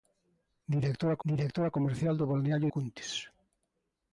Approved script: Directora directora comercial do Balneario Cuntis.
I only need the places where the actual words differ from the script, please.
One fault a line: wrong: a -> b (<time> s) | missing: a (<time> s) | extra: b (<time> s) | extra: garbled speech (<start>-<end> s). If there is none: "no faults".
no faults